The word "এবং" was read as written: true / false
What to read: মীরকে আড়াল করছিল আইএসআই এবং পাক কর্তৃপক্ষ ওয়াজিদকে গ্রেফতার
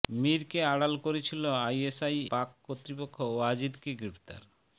false